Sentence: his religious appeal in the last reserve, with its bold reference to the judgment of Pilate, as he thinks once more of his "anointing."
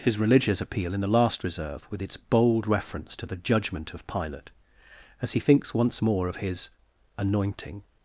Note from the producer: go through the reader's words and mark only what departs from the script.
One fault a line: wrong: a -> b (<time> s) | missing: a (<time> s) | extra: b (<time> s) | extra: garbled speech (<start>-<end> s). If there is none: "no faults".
no faults